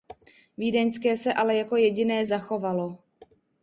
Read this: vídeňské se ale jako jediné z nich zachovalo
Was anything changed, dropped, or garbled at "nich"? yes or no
yes